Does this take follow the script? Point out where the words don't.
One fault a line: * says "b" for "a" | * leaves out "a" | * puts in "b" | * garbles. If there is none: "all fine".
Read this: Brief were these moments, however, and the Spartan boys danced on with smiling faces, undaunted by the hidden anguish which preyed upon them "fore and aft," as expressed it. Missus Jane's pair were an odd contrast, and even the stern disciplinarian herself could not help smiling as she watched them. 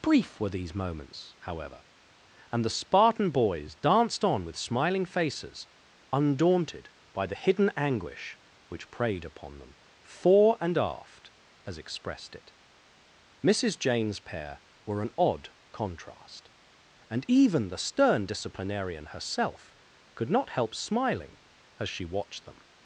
all fine